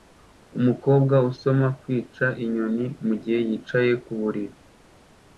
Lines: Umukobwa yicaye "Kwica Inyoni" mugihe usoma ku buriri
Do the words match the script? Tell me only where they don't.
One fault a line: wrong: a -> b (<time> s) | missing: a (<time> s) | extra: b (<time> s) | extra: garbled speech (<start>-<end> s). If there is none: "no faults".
wrong: yicaye -> usoma (1.3 s)
wrong: usoma -> yicaye (3.5 s)